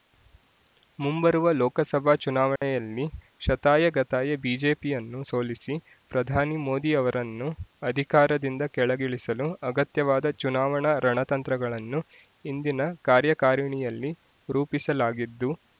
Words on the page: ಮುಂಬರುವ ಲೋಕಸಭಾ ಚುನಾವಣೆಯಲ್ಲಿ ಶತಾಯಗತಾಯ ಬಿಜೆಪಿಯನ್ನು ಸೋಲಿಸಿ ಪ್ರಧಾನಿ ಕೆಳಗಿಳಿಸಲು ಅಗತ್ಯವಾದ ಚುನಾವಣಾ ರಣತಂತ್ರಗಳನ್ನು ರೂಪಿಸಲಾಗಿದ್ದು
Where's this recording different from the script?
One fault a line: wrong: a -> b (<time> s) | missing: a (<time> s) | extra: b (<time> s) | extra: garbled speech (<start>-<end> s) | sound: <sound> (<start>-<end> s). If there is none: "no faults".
sound: dropout (2.6-2.6 s)
extra: ಮೋದಿ ಅವರನ್ನು ಅಧಿಕಾರದಿಂದ (6.6 s)
extra: ಇಂದಿನ ಕಾರ್ಯಕಾರಿಣಿಯಲ್ಲಿ (12.4 s)